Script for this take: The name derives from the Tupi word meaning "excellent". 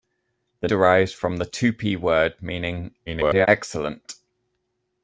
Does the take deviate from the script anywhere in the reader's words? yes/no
yes